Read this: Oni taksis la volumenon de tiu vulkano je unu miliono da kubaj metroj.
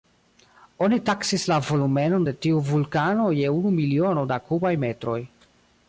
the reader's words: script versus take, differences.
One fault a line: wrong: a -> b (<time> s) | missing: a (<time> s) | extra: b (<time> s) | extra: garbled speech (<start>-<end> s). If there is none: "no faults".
no faults